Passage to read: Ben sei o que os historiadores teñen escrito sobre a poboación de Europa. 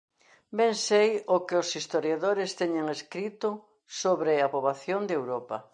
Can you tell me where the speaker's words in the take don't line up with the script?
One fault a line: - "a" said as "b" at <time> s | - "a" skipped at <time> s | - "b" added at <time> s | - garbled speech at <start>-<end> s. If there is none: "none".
none